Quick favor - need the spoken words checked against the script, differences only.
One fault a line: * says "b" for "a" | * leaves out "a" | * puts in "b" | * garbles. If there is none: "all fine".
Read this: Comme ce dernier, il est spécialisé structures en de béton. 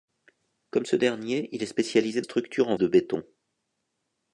all fine